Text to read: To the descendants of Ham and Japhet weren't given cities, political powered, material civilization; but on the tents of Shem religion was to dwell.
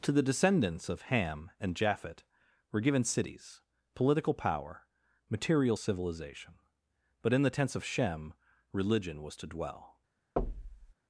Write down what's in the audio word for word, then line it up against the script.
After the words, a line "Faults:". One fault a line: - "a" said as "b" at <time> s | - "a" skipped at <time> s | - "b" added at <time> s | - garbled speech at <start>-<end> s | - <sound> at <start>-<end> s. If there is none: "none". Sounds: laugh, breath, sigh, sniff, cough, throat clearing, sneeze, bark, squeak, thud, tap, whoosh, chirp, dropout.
To the descendants of Ham and Japhet were given cities, political power, material civilization; but in the tents of Shem religion was to dwell.
Faults:
- "weren't" said as "were" at 2.7 s
- "powered" said as "power" at 4.3 s
- "on" said as "in" at 7.3 s
- thud at 10.4-10.9 s